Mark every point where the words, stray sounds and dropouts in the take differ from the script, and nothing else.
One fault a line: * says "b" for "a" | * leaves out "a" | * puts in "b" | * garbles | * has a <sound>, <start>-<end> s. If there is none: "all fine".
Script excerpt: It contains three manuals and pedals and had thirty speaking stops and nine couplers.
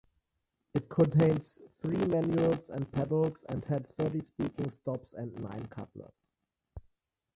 all fine